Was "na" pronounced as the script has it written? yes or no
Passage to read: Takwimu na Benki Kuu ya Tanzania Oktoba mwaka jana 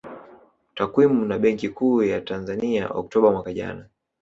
yes